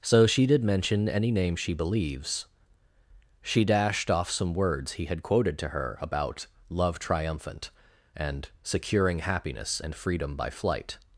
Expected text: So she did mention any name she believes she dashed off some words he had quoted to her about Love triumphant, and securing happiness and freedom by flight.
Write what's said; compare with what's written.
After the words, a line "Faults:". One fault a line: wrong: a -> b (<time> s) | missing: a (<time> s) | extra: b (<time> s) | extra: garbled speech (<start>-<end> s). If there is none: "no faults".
So she did mention any name she believes she dashed off some words he had quoted to her about Love triumphant, and securing happiness and freedom by flight.
Faults:
no faults